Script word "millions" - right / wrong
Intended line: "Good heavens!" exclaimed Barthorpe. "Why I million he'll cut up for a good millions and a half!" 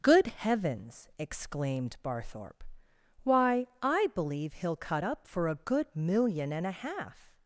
wrong